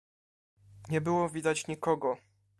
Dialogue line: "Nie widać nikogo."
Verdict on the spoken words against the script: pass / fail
fail